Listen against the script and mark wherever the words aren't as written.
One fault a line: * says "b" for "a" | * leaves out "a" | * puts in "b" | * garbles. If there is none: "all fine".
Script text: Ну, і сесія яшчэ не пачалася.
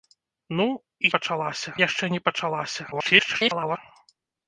* says "пачалася" for "сесія"
* garbles